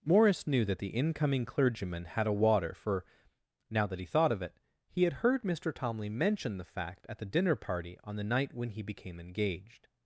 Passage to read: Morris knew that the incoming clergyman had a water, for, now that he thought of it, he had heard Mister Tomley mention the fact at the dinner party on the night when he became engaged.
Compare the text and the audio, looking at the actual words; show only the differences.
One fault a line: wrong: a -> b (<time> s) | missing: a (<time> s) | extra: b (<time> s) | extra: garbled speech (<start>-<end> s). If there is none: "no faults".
no faults